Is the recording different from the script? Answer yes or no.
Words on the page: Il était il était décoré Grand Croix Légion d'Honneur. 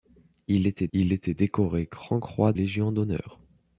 no